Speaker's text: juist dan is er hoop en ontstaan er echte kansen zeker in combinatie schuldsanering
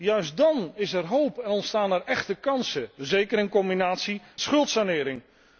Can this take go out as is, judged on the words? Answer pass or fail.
pass